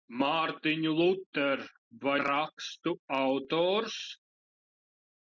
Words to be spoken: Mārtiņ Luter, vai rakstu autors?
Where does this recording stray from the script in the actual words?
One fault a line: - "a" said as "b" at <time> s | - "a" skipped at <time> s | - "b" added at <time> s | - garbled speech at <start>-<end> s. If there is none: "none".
none